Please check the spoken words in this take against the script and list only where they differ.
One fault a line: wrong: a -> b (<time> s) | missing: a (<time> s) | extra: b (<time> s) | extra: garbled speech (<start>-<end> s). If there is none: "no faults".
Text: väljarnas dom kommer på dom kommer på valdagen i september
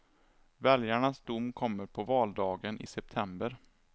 missing: dom kommer på (2.0 s)